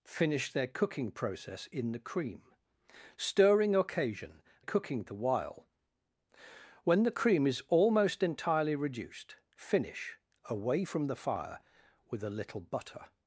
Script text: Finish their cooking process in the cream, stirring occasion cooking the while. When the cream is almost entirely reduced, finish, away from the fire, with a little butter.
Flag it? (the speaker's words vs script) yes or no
no